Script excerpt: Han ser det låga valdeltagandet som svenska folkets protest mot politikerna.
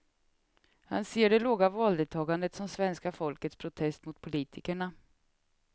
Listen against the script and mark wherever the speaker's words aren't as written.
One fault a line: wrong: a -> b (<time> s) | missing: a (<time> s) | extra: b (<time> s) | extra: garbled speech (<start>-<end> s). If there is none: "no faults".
no faults